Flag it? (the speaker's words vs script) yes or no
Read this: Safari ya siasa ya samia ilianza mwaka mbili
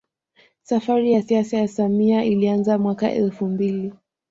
yes